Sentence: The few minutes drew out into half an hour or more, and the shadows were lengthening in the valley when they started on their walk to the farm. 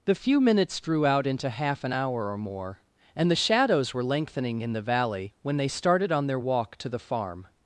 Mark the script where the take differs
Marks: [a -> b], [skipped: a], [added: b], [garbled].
The few minutes drew out into half an hour or more, and the shadows were lengthening in the valley when they started on their walk to the farm.